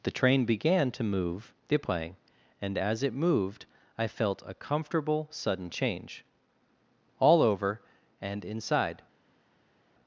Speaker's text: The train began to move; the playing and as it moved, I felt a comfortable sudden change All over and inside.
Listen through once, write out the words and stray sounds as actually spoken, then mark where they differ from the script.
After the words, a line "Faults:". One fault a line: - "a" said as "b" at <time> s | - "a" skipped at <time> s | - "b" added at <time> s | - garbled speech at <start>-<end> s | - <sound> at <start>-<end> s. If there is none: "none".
The train began to move; the playing and as it moved, I felt a comfortable sudden change All over and inside.
Faults:
none